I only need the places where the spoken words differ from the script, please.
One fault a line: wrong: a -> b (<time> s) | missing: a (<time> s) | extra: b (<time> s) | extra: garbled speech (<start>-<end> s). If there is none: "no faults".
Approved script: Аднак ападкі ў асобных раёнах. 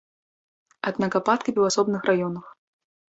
no faults